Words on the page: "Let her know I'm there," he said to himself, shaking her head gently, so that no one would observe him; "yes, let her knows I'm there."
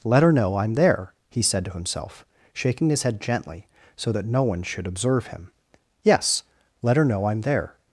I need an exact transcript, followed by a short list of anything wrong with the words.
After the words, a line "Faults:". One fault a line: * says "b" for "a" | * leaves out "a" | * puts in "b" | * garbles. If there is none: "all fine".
"Let her know I'm there," he said to himself, shaking his head gently, so that no one should observe him; "yes, let her know I'm there."
Faults:
* says "his" for "her"
* says "should" for "would"
* says "know" for "knows"